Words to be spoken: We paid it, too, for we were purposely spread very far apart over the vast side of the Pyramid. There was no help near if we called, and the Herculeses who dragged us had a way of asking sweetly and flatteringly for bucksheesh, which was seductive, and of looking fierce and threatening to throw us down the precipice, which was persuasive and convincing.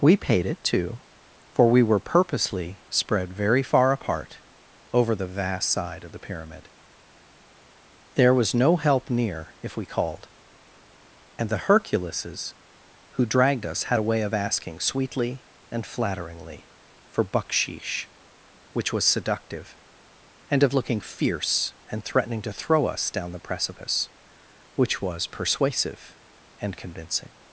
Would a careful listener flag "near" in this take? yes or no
no